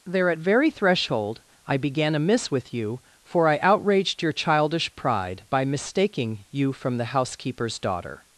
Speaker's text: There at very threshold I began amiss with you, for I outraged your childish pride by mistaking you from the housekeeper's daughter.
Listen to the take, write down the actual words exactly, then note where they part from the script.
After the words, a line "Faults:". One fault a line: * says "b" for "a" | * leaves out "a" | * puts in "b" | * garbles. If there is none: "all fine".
There at very threshold I began amiss with you, for I outraged your childish pride by mistaking you from the housekeeper's daughter.
Faults:
all fine